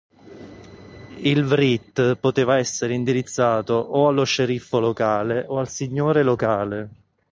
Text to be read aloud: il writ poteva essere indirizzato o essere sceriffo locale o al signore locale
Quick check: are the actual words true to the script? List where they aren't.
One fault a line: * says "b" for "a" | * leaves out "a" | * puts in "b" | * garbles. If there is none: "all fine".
* says "allo" for "essere"